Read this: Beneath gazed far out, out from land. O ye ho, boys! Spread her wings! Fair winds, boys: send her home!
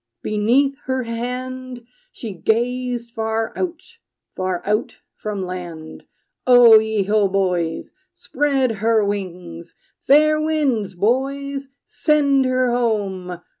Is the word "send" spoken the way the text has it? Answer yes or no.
yes